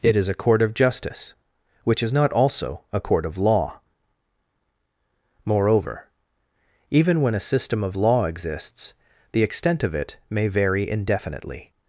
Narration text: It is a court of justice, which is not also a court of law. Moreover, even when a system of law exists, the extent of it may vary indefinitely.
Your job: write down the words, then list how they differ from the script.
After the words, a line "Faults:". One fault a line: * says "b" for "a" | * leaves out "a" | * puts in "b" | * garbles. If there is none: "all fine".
It is a court of justice, which is not also a court of law. Moreover, even when a system of law exists, the extent of it may vary indefinitely.
Faults:
all fine